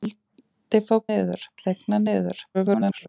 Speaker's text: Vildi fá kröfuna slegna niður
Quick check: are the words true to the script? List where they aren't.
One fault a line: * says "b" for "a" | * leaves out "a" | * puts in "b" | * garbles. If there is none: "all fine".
* says "niður" for "kröfuna"
* garbles